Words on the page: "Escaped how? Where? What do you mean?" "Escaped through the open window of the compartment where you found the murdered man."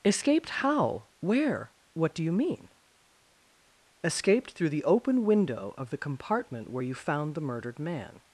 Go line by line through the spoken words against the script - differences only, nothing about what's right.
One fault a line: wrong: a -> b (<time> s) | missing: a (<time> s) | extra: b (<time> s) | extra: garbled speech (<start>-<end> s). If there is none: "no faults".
no faults